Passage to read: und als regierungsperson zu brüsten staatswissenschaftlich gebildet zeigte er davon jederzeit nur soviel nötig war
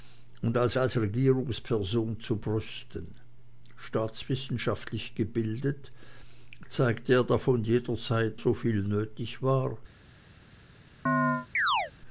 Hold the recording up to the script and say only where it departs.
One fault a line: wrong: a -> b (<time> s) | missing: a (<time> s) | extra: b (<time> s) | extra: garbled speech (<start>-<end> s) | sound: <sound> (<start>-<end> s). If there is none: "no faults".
extra: als (0.8 s)
missing: nur (8.4 s)
sound: chirp (11.1-11.9 s)